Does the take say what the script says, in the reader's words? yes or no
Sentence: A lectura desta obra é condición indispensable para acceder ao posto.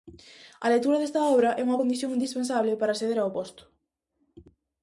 no